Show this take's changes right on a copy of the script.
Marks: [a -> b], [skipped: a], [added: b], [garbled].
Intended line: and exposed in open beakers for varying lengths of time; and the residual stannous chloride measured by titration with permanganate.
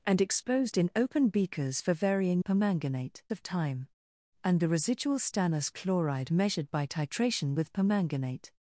and exposed in open beakers for varying [lengths -> permanganate] of time; and the residual stannous chloride measured by titration with permanganate.